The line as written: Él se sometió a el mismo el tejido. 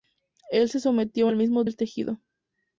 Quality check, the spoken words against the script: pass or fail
pass